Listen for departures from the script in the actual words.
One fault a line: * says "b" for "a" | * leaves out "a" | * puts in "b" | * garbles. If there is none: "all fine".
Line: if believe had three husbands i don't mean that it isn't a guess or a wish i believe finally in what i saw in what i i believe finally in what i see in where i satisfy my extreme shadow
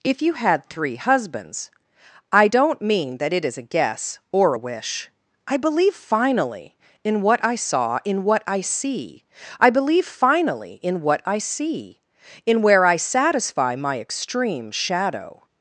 * says "you" for "believe"
* says "is" for "isn't"
* puts in "see"